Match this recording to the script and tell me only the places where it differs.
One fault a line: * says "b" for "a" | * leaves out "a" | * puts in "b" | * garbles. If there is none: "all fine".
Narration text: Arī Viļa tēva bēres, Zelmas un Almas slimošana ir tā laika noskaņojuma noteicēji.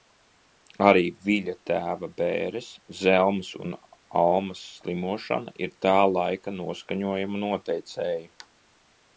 all fine